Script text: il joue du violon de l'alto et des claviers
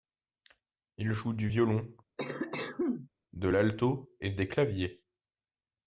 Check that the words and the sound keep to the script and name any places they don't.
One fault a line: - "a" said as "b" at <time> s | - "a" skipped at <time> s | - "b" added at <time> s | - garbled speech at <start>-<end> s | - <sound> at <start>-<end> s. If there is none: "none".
- cough at 2.2-3.1 s